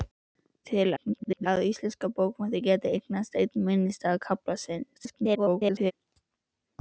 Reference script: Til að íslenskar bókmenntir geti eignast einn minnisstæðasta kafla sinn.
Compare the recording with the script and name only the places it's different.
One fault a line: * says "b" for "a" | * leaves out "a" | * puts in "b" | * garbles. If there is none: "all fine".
* garbles
* garbles